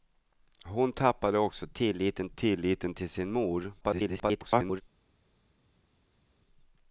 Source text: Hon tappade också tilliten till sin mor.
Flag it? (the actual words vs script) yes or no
yes